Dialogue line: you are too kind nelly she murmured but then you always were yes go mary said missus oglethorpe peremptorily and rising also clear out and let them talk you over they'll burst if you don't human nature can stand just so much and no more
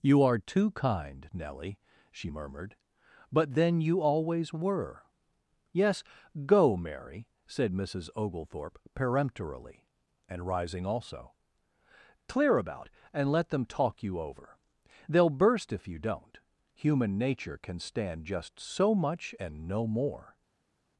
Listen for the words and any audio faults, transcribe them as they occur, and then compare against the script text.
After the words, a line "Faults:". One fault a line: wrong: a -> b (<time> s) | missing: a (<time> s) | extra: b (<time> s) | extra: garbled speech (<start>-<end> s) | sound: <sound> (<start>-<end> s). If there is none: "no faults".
you are too kind nelly she murmured but then you always were yes go mary said missus oglethorpe peremptorily and rising also clear about and let them talk you over they'll burst if you don't human nature can stand just so much and no more
Faults:
wrong: out -> about (12.6 s)